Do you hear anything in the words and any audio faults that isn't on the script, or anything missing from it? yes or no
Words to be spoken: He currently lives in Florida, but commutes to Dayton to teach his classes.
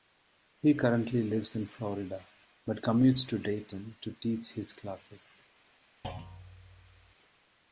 yes